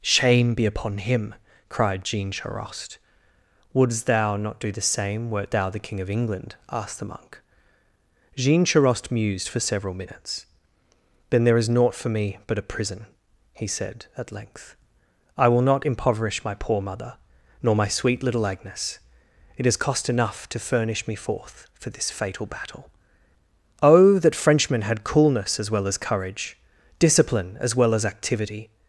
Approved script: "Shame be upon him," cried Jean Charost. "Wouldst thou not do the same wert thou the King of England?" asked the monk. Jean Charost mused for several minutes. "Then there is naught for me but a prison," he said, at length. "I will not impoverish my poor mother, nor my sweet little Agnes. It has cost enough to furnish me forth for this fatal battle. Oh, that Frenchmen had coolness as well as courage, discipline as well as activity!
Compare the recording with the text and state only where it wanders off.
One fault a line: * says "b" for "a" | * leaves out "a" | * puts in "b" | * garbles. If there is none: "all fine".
all fine